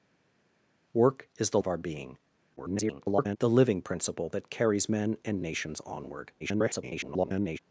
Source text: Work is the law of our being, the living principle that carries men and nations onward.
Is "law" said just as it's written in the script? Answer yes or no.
no